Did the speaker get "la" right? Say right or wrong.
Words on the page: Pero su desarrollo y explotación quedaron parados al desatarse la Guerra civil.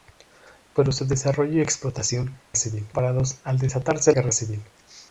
wrong